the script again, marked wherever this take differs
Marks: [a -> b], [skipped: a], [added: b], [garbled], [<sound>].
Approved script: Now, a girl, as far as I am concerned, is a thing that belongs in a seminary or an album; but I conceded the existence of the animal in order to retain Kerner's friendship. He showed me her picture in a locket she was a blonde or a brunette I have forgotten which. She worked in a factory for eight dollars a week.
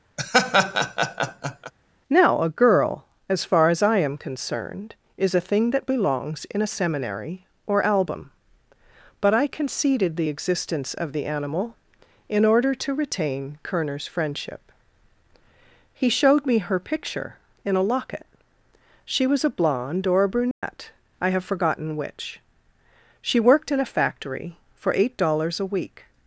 [laugh] Now, a girl, as far as I am concerned, is a thing that belongs in a seminary or [skipped: an] album; but I conceded the existence of the animal in order to retain Kerner's friendship. He showed me her picture in a locket she was a blonde or a brunette [dropout] I have forgotten which. She worked in a factory for eight dollars a week.